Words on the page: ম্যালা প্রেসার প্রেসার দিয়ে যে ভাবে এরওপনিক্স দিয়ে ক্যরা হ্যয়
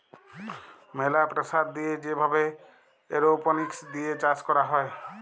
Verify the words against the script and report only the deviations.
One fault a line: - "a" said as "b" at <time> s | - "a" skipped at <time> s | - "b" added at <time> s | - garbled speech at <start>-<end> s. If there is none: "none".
- "প্রেসার" skipped at 1.6 s
- "চাষ" added at 4.2 s